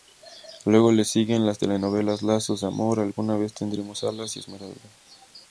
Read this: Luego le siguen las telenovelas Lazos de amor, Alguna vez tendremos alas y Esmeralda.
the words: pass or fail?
pass